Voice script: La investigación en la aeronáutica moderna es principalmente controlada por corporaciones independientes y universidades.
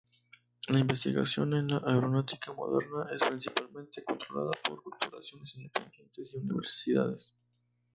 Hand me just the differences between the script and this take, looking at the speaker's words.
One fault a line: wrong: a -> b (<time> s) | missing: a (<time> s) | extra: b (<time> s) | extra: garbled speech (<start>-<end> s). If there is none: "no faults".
no faults